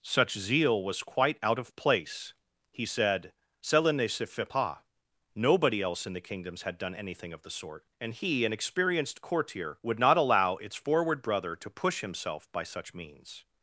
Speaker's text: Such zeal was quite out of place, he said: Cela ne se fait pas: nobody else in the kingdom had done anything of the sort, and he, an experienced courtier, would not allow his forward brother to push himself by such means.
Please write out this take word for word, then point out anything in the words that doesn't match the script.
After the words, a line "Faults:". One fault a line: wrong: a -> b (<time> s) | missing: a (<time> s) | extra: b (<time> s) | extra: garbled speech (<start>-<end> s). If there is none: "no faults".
Such zeal was quite out of place, he said: Cela ne se fait pas: nobody else in the kingdoms had done anything of the sort, and he, an experienced courtier, would not allow its forward brother to push himself by such means.
Faults:
wrong: kingdom -> kingdoms (6.2 s)
wrong: his -> its (10.6 s)